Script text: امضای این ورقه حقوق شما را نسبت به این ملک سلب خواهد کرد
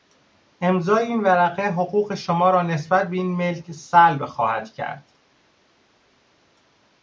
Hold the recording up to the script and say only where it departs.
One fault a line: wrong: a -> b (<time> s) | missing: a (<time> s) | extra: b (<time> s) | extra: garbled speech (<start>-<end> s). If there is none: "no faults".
no faults